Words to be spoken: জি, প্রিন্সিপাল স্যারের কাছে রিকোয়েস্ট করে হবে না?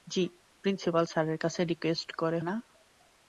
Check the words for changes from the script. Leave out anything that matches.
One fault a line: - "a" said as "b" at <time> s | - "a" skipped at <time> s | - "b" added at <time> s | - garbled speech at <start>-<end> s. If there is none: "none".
- "হবে" skipped at 2.4 s